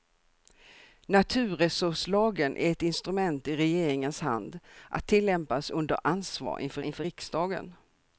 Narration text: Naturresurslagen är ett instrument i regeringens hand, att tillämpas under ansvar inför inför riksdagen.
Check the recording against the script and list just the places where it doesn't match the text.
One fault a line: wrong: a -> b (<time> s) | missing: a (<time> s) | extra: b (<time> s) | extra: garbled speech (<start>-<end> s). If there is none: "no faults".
no faults